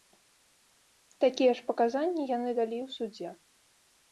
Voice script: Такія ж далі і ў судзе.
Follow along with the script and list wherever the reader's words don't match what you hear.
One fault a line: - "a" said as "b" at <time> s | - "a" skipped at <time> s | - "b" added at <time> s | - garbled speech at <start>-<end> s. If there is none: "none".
- "паказанні яны" added at 1.7 s